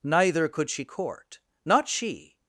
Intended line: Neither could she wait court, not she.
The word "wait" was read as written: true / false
false